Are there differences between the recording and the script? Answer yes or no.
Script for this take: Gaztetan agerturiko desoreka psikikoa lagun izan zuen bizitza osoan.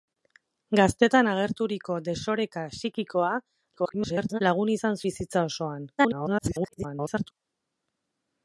yes